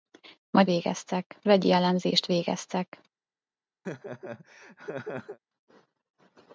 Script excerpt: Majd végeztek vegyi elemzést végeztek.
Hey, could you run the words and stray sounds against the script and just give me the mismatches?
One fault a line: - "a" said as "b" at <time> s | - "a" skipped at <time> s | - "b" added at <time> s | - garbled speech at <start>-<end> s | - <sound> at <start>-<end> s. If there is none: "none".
- laugh at 3.8-5.4 s